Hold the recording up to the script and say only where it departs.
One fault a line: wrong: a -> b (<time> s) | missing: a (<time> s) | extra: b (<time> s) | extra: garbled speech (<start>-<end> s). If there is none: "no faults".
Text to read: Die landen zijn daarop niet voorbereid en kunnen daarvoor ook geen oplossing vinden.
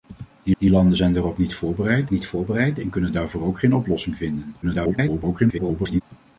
extra: die (0.6 s)
extra: niet voorbereid (2.1 s)
extra: garbled speech (4.6-6.0 s)